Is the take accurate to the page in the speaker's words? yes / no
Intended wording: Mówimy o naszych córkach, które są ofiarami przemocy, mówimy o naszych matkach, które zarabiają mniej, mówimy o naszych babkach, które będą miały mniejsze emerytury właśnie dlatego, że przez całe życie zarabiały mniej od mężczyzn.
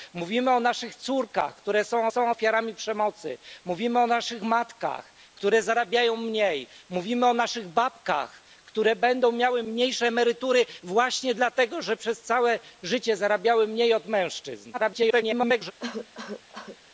no